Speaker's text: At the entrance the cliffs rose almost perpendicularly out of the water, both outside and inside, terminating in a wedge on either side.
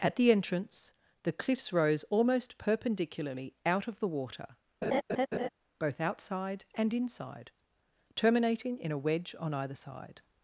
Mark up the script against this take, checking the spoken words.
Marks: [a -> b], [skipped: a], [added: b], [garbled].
At the entrance the cliffs rose almost perpendicularly out of the water, both outside and inside, terminating in a wedge on either side.